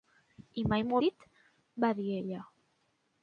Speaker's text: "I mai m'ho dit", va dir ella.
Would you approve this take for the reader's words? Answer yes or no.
yes